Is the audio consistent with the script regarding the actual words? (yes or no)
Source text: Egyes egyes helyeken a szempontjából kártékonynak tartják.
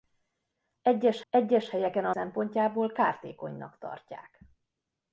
yes